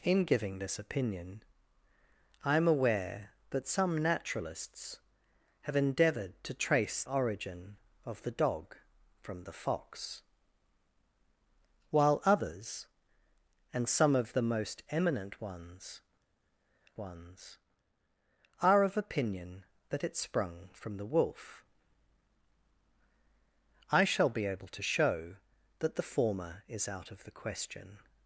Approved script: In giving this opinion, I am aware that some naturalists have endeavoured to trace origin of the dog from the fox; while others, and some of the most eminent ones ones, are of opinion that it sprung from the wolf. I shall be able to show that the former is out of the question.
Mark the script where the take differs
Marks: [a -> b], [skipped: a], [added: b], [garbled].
In giving this opinion, I am aware that some naturalists have endeavoured to trace origin of the dog from the fox; while others, and some of the most eminent ones ones, are of opinion that it sprung from the wolf. I shall be able to show that the former is out of the question.